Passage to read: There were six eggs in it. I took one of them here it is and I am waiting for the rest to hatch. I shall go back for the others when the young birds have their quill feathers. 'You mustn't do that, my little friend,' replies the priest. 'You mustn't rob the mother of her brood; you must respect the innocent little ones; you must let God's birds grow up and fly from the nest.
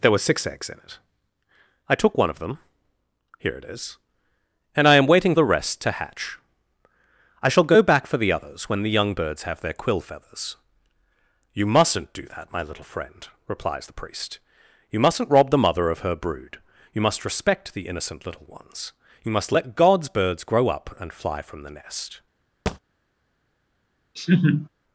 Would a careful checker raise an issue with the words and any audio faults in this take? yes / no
yes